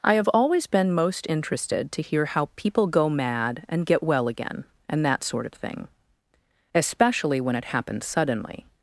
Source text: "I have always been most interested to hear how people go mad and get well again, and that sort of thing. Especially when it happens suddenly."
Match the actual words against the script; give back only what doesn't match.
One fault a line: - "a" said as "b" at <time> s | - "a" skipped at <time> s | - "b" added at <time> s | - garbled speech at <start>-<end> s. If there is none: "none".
none